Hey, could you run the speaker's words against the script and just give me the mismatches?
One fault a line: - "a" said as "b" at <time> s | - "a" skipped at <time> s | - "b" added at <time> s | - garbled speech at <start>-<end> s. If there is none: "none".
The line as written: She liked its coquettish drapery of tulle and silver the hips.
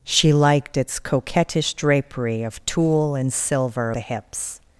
none